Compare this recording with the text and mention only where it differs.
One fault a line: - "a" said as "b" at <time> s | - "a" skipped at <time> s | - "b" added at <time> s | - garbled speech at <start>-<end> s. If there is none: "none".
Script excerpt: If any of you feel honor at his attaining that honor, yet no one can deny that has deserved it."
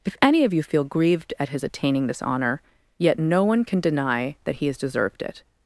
- "honor" said as "grieved" at 0.8 s
- "that" said as "this" at 2.1 s
- "he" added at 4.5 s